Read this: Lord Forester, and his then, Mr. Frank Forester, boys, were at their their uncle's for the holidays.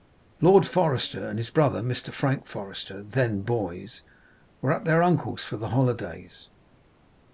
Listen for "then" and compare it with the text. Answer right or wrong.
wrong